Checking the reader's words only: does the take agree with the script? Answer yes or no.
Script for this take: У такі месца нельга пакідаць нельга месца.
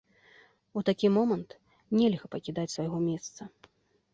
no